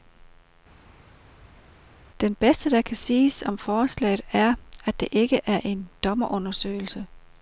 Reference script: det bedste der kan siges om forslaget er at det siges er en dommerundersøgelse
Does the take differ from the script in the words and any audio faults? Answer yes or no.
yes